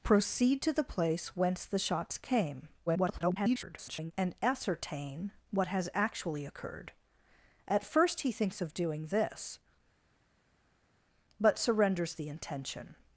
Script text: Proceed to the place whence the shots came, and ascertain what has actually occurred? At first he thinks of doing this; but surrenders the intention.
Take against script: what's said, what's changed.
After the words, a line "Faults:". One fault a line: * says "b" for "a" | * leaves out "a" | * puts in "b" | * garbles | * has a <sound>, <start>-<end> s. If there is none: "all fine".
Proceed to the place whence the shots came, [garbled] and ascertain what has actually occurred? At first he thinks of doing this; but surrenders the intention.
Faults:
* garbles